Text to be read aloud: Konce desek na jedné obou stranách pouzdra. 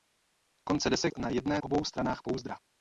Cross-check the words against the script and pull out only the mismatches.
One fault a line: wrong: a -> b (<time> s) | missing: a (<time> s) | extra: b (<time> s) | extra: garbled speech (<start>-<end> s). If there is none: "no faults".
no faults